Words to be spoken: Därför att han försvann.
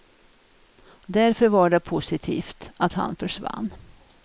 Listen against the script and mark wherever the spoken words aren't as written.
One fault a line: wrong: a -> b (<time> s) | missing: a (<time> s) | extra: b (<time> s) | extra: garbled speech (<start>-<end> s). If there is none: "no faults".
extra: var det positivt (1.5 s)